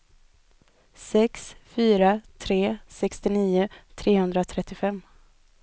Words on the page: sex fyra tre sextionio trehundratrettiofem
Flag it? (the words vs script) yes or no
no